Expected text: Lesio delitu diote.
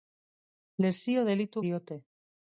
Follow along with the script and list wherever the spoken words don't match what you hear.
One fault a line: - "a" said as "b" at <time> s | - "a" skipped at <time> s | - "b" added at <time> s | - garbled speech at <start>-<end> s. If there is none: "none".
none